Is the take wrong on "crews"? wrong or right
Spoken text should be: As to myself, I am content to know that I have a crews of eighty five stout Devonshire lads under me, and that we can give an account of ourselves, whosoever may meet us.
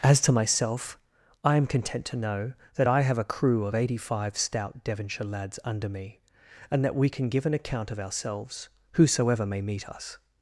wrong